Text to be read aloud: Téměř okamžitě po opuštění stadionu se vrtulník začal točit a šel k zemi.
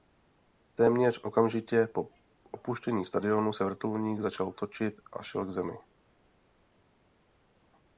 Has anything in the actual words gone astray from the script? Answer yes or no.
no